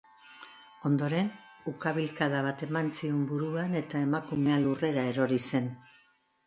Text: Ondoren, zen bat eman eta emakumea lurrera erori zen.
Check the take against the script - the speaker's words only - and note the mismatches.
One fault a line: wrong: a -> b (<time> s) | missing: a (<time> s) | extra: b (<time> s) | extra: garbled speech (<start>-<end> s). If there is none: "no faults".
wrong: zen -> ukabilkada (1.7 s)
extra: zion buruan (3.0 s)